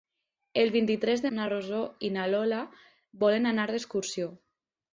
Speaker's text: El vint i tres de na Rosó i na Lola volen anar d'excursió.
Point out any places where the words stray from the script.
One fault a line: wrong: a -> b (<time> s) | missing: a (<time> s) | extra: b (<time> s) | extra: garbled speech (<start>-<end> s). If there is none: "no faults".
no faults